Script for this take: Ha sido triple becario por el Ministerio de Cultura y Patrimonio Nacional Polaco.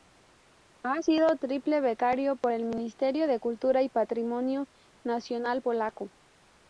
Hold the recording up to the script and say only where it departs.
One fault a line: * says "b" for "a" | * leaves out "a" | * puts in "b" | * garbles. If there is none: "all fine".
all fine